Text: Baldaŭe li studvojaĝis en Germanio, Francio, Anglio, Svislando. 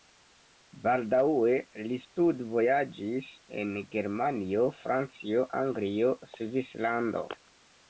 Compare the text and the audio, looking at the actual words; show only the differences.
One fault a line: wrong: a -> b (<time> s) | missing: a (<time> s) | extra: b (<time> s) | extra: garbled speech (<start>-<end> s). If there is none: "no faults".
no faults